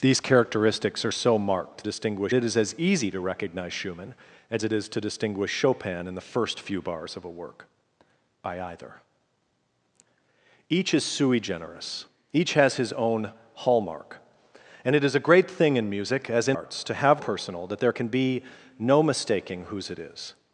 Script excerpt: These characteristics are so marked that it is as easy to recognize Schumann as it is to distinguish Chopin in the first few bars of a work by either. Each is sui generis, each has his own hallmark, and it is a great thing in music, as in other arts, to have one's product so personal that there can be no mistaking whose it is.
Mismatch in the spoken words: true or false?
true